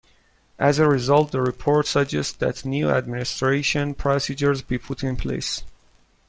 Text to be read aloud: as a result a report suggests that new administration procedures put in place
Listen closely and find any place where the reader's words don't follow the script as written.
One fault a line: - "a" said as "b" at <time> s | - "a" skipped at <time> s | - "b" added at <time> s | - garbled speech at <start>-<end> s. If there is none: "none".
- "a" said as "the" at 1.3 s
- "be" added at 4.6 s